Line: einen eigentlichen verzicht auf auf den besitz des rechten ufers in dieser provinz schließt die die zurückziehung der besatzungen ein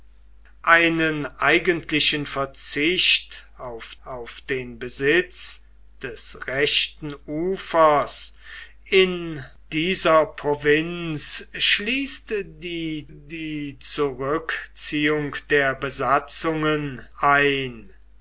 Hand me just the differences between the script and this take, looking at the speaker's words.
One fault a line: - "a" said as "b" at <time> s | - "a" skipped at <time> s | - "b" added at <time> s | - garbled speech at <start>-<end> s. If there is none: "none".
none